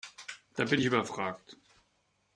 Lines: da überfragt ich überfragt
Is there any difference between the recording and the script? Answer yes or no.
yes